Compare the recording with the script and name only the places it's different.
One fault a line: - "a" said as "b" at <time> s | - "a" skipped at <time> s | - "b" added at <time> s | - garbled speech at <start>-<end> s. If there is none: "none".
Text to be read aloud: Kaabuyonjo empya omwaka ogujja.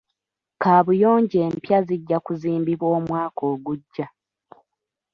- "zijja kuzimbibwa" added at 1.9 s